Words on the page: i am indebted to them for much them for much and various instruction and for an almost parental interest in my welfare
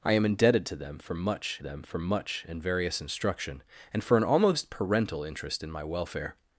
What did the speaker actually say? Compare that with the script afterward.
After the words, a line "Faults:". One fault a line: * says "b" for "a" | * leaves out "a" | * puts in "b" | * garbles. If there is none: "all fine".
i am indebted to them for much them for much and various instruction and for an almost parental interest in my welfare
Faults:
all fine